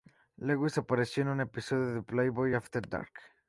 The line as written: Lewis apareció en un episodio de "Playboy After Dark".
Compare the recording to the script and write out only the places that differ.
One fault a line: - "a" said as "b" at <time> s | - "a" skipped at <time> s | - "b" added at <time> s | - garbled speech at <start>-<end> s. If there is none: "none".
none